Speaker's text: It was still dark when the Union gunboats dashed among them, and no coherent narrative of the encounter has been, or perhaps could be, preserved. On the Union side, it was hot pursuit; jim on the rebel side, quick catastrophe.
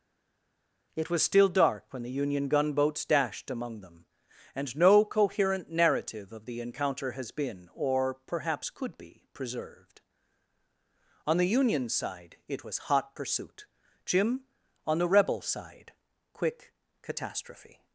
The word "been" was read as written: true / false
true